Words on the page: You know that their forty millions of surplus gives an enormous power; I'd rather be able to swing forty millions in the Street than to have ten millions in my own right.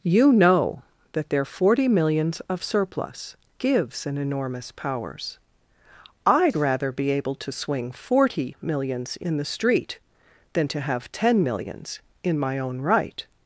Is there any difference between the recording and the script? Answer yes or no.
yes